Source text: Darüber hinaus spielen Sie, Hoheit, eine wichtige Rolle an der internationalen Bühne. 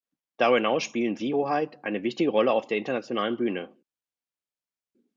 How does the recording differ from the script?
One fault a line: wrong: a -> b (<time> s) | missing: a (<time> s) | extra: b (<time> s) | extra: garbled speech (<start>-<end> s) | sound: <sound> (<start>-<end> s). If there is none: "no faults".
wrong: an -> auf (2.5 s)